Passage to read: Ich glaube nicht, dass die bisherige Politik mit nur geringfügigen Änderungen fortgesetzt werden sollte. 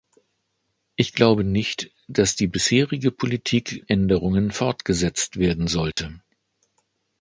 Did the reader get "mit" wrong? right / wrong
wrong